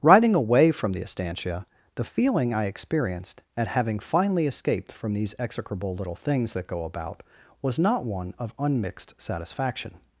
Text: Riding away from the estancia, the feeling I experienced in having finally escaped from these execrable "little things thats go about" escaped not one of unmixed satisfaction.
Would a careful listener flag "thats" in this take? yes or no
yes